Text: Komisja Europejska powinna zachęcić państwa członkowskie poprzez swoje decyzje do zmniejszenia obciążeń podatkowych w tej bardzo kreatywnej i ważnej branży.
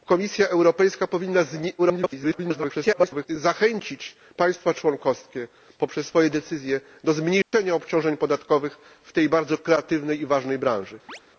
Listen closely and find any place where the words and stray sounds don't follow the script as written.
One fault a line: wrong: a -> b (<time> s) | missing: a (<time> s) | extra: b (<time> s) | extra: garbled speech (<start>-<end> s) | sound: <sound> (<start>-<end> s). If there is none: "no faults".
extra: garbled speech (1.8-3.3 s)
sound: dropout (7.4-7.5 s)
sound: chirp (11.1-11.2 s)